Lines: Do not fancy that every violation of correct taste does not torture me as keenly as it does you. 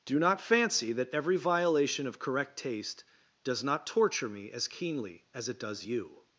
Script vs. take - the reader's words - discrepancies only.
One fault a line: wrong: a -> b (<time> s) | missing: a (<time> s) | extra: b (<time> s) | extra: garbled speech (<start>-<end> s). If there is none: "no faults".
no faults